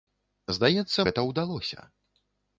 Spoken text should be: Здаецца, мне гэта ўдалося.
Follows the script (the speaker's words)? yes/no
no